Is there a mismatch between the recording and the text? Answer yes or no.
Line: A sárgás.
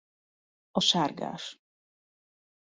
no